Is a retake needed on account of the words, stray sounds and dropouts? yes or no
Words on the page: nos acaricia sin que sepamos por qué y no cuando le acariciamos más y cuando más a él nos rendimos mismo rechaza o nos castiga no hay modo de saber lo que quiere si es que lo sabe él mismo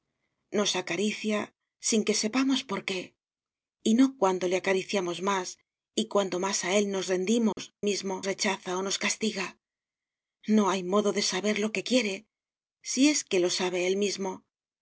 yes